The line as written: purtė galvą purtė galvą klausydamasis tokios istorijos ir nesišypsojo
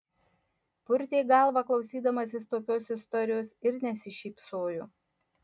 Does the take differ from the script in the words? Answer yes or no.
yes